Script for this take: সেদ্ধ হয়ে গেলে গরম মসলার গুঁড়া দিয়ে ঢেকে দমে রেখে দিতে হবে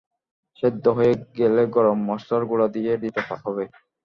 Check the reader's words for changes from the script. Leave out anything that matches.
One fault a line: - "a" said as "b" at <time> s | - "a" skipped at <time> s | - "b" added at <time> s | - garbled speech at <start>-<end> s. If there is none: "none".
- "ঢেকে দমে রেখে" skipped at 2.9 s